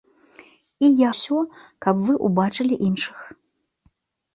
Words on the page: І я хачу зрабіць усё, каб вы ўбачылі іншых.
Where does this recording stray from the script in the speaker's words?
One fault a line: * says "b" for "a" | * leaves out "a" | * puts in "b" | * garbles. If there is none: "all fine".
* leaves out "хачу зрабіць"